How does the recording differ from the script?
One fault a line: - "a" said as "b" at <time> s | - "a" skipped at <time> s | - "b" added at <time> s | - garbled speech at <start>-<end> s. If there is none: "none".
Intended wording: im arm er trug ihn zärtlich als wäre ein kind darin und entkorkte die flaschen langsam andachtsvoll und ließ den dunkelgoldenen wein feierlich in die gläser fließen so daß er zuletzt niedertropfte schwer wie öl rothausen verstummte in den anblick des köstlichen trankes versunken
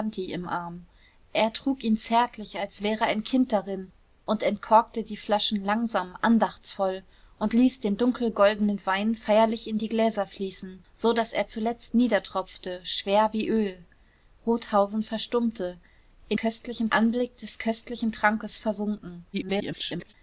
- "den" said as "köstlichen" at 16.4 s
- garbled speech at 19.3-20.1 s